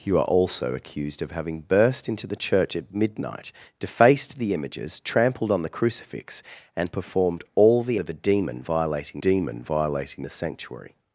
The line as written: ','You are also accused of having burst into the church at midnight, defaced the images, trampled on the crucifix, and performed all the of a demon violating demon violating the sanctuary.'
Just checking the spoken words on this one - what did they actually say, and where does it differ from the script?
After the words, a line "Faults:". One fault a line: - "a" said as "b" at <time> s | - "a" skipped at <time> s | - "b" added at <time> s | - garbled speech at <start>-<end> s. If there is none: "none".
','You are also accused of having burst into the church at midnight, defaced the images, trampled on the crucifix, and performed all the of a demon violating demon violating the sanctuary.'
Faults:
none